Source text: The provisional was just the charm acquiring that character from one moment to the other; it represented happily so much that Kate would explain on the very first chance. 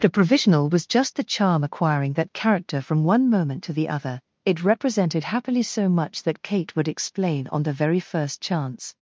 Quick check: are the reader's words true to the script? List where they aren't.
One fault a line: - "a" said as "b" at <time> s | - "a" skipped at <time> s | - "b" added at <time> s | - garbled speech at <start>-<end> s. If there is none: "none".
none